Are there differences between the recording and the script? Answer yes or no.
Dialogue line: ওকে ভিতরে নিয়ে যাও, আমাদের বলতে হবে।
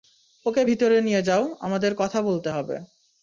yes